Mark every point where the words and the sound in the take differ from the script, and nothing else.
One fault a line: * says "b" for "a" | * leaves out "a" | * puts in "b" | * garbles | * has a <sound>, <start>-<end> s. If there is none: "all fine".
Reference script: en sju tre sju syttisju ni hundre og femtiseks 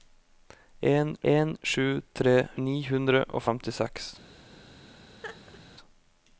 * puts in "en"
* leaves out "sju syttisju"
* has a laugh, 5.2-5.6 s